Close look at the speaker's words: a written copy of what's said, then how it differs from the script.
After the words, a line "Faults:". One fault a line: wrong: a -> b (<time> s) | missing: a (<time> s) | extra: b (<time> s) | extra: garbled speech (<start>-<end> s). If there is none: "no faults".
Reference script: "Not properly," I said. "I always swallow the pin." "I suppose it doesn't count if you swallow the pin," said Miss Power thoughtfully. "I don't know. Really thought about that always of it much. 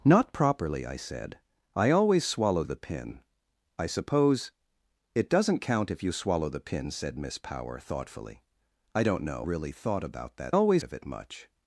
"Not properly," I said. "I always swallow the pin." "I suppose it doesn't count if you swallow the pin," said Miss Power thoughtfully. "I don't know. Really thought about that always of it much.
Faults:
no faults